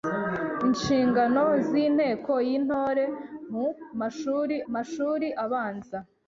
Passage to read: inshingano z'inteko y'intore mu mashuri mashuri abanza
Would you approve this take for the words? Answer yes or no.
yes